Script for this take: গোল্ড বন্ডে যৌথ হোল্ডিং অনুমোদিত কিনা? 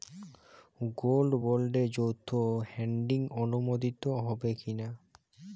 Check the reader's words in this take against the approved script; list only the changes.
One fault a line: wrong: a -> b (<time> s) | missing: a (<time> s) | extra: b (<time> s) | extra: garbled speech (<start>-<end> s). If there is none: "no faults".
extra: হবে (4.2 s)